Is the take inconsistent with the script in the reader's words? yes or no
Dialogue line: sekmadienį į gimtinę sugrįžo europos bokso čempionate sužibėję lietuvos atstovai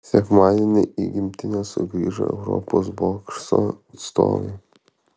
yes